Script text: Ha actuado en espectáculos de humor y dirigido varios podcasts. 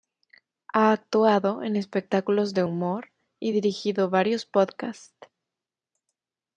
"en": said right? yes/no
yes